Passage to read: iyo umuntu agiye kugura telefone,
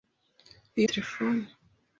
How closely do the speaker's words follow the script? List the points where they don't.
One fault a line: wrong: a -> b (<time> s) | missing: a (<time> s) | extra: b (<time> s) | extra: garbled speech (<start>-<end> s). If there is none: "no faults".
missing: umuntu agiye kugura (0.9 s)